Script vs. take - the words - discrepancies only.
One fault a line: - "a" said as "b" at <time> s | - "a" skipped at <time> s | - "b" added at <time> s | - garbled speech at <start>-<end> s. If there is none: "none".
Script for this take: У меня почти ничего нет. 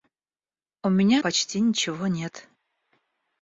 none